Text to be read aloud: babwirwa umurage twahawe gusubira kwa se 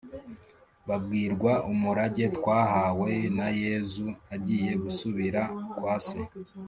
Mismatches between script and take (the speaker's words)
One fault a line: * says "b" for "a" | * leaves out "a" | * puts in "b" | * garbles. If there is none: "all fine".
* puts in "na yezu agiye"